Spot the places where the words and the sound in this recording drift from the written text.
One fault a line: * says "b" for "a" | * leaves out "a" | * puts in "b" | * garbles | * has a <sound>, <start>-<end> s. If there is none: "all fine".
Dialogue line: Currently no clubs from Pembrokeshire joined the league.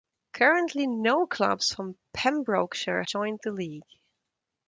all fine